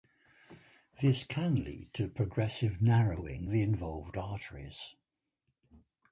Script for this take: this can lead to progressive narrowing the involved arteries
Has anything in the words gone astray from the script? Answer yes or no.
no